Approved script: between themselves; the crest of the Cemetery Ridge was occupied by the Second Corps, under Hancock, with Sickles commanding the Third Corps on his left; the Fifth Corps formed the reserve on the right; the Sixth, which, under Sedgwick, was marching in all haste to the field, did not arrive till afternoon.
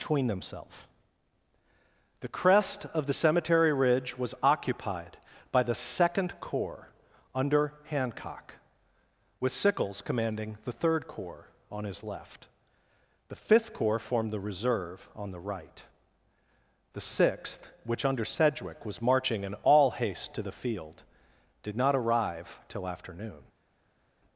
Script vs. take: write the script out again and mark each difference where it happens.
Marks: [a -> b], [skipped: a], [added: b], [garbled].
between themselves; the crest of the Cemetery Ridge was occupied by the Second Corps, under Hancock, with Sickles commanding the Third Corps on his left; the Fifth Corps formed the reserve on the right; the Sixth, which, under Sedgwick, was marching in all haste to the field, did not arrive till afternoon.